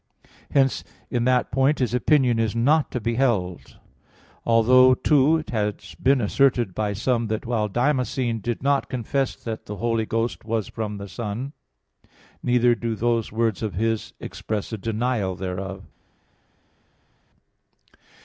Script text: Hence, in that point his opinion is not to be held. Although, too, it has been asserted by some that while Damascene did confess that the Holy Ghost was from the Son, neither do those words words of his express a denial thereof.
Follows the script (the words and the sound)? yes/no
no